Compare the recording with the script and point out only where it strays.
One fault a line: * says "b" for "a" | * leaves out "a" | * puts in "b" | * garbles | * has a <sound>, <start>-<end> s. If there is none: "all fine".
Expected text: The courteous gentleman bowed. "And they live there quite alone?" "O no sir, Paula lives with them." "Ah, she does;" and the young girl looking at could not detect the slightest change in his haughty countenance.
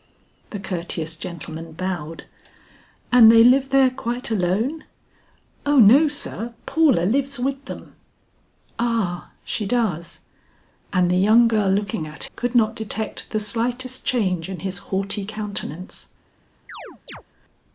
* has a chirp, 16.7-17.2 s